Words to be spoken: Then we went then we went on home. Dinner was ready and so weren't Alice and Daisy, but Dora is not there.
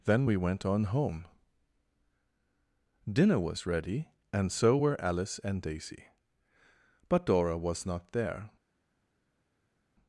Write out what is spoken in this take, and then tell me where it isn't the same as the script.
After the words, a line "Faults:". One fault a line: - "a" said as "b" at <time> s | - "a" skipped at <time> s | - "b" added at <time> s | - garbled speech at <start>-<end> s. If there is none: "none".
Then we went on home. Dinner was ready and so were Alice and Daisy, but Dora was not there.
Faults:
- "then we went" skipped at 0.6 s
- "weren't" said as "were" at 4.7 s
- "is" said as "was" at 7.6 s